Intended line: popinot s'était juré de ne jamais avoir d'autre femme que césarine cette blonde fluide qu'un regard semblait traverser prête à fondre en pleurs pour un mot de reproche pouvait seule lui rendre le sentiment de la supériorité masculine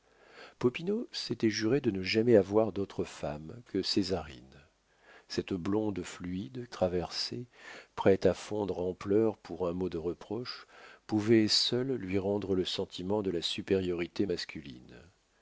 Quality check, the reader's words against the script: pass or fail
fail